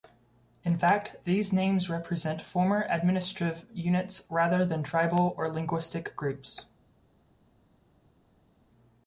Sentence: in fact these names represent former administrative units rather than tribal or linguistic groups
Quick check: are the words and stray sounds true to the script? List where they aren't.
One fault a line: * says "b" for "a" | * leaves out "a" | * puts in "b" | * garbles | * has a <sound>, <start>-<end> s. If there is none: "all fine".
all fine